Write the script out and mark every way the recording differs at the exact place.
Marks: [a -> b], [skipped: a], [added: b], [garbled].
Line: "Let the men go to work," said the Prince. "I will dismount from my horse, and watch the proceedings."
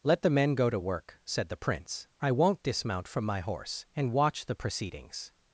"Let the men go to work," said the Prince. "I [will -> won't] dismount from my horse, and watch the proceedings."